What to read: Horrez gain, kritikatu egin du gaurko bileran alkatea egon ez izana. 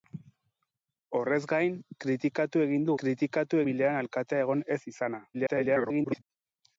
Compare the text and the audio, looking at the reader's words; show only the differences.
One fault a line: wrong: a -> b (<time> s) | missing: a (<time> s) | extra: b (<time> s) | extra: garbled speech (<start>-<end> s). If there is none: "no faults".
wrong: gaurko -> kritikatu (3.0 s)
extra: garbled speech (5.3-6.2 s)